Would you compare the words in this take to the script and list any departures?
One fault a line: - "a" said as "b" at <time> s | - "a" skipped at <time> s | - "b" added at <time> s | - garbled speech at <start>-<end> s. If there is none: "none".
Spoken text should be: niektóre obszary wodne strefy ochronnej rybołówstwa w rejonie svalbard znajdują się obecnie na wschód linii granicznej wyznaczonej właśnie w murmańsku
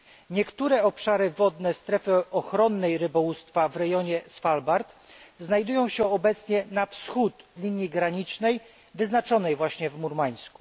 none